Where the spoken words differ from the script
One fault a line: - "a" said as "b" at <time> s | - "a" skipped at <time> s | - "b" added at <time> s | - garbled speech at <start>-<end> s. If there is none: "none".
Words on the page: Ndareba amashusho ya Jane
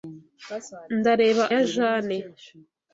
- "amashusho" skipped at 1.4 s